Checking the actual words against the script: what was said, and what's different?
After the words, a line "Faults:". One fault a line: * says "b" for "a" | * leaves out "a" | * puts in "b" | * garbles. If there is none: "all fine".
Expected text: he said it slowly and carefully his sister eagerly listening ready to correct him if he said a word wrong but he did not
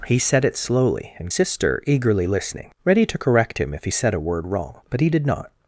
he said it slowly and sister eagerly listening ready to correct him if he said a word wrong but he did not
Faults:
* leaves out "carefully his"